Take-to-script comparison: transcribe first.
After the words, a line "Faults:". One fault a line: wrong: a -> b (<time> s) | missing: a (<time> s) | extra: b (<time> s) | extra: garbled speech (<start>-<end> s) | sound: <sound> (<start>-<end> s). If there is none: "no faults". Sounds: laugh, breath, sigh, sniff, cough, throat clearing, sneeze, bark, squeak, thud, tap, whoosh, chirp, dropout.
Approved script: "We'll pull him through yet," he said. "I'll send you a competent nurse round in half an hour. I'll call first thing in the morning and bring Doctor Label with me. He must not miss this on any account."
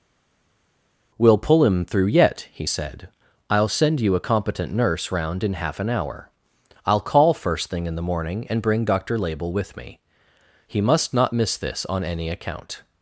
"We'll pull him through yet," he said. "I'll send you a competent nurse round in half an hour. I'll call first thing in the morning and bring Doctor Label with me. He must not miss this on any account."
Faults:
no faults